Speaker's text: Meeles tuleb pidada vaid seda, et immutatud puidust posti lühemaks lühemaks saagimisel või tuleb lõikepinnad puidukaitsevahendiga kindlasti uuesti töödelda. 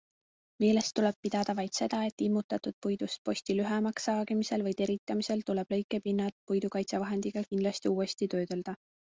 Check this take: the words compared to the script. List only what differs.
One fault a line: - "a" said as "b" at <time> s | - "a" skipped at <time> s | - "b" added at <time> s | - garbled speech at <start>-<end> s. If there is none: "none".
- "lühemaks" skipped at 4.1 s
- "teritamisel" added at 4.8 s